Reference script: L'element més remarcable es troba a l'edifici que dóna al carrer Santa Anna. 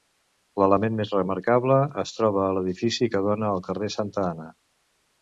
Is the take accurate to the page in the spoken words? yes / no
yes